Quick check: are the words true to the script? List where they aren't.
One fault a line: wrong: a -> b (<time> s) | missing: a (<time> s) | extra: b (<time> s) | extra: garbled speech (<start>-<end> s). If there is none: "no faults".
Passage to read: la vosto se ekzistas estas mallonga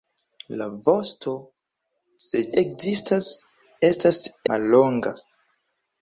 no faults